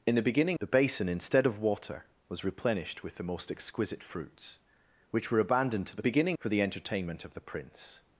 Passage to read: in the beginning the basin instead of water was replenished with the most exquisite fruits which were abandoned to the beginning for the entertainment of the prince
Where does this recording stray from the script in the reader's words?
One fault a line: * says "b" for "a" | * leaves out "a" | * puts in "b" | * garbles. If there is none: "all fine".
all fine